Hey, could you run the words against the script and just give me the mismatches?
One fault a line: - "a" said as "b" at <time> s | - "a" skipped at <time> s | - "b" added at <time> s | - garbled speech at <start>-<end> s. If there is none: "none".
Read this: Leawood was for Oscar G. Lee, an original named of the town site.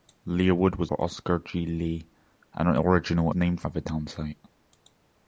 none